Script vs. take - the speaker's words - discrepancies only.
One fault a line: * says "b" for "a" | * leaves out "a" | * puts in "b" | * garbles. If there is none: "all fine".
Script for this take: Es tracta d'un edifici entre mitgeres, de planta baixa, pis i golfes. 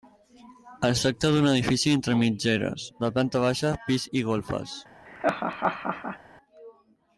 all fine